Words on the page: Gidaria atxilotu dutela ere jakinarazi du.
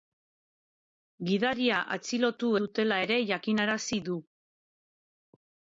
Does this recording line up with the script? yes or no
yes